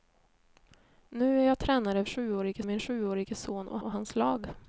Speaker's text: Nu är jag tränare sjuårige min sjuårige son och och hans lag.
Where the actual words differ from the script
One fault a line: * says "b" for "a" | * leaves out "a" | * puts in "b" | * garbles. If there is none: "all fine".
all fine